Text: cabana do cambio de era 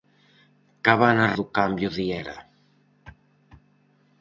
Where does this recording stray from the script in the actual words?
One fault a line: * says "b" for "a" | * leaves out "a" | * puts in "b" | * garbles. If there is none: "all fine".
all fine